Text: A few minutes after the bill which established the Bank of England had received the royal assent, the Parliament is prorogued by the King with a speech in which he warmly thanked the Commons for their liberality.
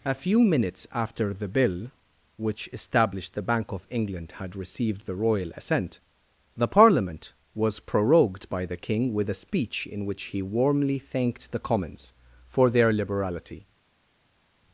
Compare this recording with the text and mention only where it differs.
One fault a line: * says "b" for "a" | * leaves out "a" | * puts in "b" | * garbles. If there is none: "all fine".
* says "was" for "is"